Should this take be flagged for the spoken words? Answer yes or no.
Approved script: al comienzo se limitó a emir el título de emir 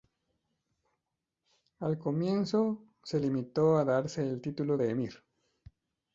yes